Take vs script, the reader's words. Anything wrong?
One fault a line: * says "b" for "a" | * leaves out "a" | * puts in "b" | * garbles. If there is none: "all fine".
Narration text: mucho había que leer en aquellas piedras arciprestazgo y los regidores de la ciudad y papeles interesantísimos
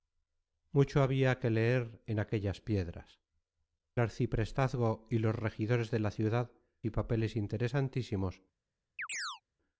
all fine